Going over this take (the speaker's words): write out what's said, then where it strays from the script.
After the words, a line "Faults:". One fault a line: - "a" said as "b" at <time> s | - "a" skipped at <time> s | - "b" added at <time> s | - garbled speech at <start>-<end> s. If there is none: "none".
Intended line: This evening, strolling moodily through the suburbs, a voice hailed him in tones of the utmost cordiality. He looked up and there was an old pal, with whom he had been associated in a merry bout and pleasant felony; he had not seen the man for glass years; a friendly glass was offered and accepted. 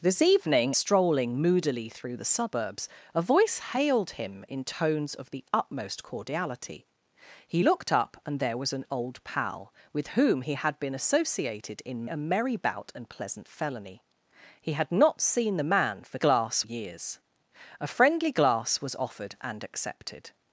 This evening, strolling moodily through the suburbs, a voice hailed him in tones of the utmost cordiality. He looked up and there was an old pal, with whom he had been associated in a merry bout and pleasant felony; he had not seen the man for glass years; a friendly glass was offered and accepted.
Faults:
none